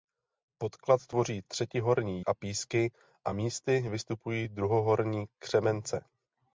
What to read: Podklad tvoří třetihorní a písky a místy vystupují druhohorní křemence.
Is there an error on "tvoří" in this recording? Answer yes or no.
no